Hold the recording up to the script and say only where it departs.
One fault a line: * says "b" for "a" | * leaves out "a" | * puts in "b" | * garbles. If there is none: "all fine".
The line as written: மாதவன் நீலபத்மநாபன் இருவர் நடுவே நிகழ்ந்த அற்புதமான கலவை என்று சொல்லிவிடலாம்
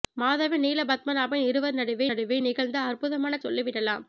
* puts in "நடுவே"
* leaves out "கலவை என்று"